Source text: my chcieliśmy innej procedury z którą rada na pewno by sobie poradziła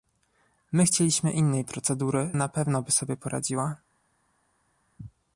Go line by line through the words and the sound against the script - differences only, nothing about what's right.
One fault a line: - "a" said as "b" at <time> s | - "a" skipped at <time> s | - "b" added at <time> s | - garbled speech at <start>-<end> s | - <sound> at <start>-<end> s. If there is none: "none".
- "z którą rada" skipped at 2.3 s